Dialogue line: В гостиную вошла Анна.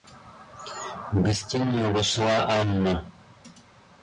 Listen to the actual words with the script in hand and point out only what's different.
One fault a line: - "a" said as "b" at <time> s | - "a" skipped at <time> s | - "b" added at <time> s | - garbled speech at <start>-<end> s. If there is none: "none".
none